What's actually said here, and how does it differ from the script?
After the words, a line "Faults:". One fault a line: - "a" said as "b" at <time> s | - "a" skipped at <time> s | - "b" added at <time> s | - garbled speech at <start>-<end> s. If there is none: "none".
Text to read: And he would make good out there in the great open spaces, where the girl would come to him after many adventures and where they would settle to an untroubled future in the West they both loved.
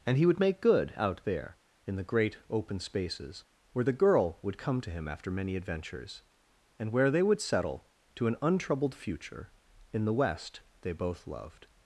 And he would make good out there in the great open spaces, where the girl would come to him after many adventures and where they would settle to an untroubled future in the West they both loved.
Faults:
none